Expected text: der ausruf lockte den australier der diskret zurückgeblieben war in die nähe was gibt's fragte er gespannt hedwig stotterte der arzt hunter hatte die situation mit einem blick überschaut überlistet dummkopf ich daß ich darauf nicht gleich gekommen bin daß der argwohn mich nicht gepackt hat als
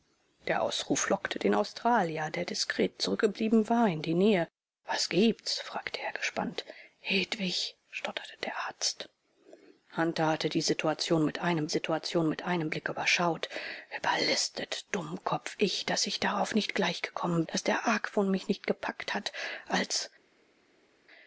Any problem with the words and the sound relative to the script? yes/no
yes